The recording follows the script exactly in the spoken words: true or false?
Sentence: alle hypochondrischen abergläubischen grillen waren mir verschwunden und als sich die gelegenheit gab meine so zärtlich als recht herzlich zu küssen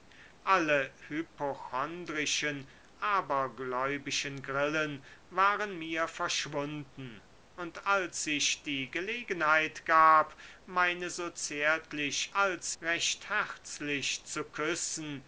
true